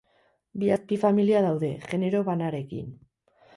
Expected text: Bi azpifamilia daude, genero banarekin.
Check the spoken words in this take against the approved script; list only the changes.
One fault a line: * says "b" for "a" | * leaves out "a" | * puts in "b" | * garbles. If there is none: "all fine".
all fine